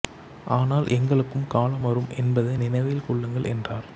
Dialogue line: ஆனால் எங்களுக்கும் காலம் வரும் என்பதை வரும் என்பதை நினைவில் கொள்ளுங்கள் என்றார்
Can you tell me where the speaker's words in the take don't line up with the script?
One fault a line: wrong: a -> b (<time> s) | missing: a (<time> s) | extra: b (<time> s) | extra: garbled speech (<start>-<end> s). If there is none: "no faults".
missing: வரும் என்பதை (2.5 s)